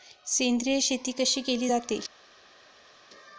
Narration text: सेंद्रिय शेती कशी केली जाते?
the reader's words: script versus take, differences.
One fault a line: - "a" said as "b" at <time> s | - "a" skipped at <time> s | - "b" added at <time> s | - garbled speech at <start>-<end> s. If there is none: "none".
none